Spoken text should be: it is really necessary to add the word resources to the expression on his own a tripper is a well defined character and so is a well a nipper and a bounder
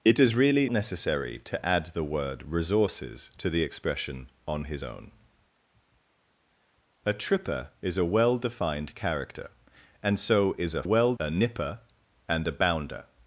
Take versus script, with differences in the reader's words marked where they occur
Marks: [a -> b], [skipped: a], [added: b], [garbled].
it is really necessary to add the word resources to the expression on his own a tripper is a well defined character and so is a well a nipper and a bounder